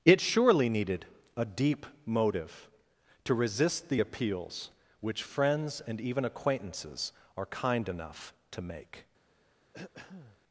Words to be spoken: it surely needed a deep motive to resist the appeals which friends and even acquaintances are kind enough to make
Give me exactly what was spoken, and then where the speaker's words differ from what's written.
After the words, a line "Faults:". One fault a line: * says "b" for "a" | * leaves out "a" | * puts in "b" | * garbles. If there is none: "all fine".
it surely needed a deep motive to resist the appeals which friends and even acquaintances are kind enough to make
Faults:
all fine